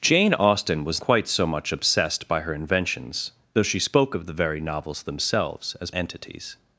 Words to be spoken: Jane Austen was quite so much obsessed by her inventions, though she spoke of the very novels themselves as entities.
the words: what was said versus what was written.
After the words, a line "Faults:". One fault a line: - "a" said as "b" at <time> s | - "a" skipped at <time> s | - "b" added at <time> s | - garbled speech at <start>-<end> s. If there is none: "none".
Jane Austen was quite so much obsessed by her inventions, though she spoke of the very novels themselves as entities.
Faults:
none